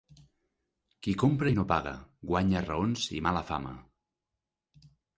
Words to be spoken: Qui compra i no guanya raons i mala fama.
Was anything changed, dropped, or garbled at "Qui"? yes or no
no